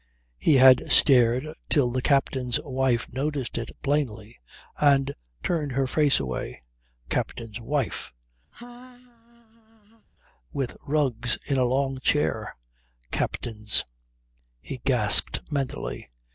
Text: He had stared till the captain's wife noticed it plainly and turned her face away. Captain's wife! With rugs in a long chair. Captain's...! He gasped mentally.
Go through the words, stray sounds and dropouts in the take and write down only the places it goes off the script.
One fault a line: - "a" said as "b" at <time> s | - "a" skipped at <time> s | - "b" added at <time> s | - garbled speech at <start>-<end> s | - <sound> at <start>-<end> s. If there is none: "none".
- laugh at 8.5-10.1 s